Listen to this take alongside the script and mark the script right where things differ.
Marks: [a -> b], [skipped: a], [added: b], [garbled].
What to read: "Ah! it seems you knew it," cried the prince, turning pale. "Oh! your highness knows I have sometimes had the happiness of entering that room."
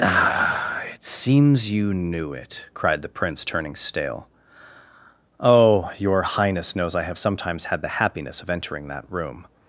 "Ah! it seems you knew it," cried the prince, turning [pale. -> stale] "Oh! your highness knows I have sometimes had the happiness of entering that room."